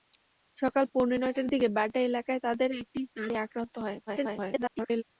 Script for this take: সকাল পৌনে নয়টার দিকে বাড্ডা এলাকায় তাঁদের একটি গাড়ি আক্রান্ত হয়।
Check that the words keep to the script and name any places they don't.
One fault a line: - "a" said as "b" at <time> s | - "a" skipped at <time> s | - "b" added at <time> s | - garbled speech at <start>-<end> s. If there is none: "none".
- garbled speech at 4.1-5.0 s